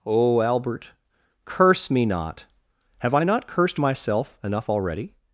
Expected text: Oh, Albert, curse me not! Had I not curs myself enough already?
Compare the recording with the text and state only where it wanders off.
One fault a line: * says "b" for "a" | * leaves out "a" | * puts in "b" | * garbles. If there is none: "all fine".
* says "Have" for "Had"
* says "cursed" for "curs"